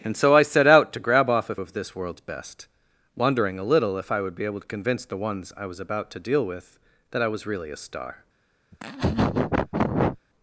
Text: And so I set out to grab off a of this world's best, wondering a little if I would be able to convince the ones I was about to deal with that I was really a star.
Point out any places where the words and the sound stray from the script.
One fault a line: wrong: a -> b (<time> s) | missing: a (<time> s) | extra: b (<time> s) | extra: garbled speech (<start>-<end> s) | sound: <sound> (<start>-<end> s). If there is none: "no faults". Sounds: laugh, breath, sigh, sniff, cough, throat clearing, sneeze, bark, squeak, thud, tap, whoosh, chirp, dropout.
sound: laugh (8.7-10.2 s)